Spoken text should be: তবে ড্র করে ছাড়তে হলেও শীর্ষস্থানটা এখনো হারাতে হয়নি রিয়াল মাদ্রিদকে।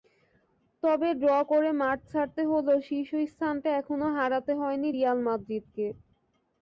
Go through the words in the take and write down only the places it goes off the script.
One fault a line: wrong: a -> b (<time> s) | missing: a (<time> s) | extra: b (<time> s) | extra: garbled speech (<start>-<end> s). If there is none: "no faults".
extra: মাঠ (1.8 s)